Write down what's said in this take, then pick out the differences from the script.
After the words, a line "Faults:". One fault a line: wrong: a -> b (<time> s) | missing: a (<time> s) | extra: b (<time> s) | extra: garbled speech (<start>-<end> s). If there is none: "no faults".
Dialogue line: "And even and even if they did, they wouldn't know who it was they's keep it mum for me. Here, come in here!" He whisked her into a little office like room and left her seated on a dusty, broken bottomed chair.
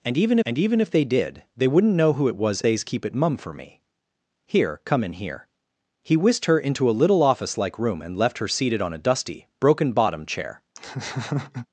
"And even and even if they did, they wouldn't know who it was they's keep it mum for me. Here, come in here!" He whisked her into a little office like room and left her seated on a dusty, broken bottomed chair.
Faults:
no faults